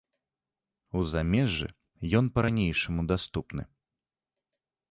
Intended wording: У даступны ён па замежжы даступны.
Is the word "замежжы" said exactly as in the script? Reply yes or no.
no